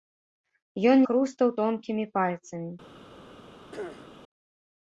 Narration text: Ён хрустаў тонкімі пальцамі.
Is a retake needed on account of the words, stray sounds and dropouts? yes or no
yes